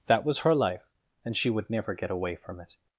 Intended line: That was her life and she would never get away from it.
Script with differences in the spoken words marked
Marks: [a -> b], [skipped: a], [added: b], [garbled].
That was her life and she would never get away from it.